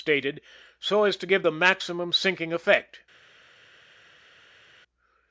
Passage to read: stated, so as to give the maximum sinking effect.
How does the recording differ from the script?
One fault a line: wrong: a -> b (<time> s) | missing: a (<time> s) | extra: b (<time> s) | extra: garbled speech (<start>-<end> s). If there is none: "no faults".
no faults